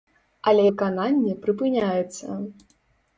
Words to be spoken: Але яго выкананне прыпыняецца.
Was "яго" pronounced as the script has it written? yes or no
no